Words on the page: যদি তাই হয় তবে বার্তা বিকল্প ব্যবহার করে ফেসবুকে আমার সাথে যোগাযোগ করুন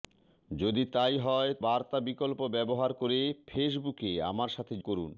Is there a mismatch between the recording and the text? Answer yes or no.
yes